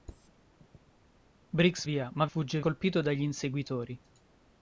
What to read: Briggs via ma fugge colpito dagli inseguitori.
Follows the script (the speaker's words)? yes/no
yes